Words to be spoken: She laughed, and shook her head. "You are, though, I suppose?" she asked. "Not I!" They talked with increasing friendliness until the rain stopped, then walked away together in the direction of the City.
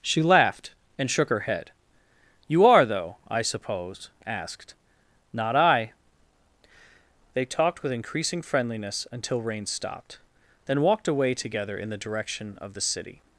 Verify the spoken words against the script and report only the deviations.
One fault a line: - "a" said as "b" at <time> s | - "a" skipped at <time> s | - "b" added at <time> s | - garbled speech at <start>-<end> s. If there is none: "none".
- "she" skipped at 4.1 s
- "the" skipped at 9.4 s